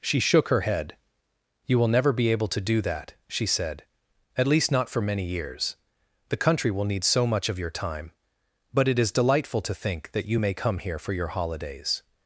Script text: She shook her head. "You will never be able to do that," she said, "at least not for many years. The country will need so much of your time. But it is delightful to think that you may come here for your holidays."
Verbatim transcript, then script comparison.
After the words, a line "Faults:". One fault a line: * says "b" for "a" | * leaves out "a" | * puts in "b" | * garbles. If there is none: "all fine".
She shook her head. "You will never be able to do that," she said, "at least not for many years. The country will need so much of your time. But it is delightful to think that you may come here for your holidays."
Faults:
all fine